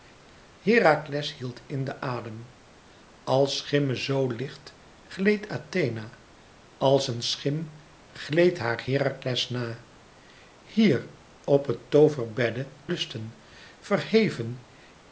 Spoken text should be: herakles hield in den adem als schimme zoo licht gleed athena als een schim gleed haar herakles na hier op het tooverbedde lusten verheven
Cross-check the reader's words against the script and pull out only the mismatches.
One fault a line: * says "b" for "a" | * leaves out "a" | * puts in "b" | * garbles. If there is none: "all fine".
all fine